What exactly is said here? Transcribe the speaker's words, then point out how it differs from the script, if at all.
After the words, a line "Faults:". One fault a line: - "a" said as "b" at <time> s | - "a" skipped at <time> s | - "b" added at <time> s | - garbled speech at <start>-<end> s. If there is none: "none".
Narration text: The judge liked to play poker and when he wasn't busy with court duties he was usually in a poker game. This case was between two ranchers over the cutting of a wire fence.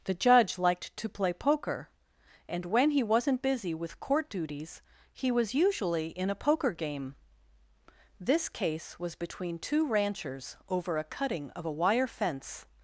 The judge liked to play poker and when he wasn't busy with court duties he was usually in a poker game. This case was between two ranchers over a cutting of a wire fence.
Faults:
- "the" said as "a" at 11.0 s